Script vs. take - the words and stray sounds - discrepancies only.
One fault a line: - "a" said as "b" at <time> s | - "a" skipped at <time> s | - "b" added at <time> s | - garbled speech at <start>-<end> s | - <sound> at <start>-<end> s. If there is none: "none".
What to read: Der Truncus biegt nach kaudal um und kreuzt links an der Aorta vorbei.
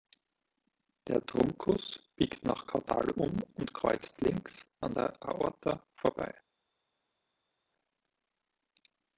none